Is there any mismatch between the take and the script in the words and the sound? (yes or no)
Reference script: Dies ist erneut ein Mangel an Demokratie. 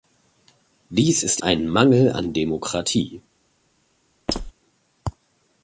yes